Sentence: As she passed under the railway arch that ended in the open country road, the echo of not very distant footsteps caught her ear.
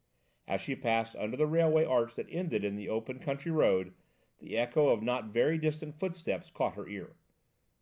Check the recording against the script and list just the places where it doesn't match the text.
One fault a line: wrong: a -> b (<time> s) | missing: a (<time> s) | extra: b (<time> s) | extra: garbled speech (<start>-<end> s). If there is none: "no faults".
no faults